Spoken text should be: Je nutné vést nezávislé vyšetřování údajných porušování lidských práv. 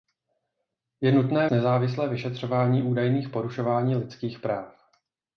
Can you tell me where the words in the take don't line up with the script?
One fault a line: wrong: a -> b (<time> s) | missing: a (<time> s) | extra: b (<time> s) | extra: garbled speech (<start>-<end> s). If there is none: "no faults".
missing: vést (1.5 s)